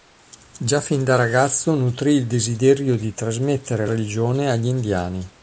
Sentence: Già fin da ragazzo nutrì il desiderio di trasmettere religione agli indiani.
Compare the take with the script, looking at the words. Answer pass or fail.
pass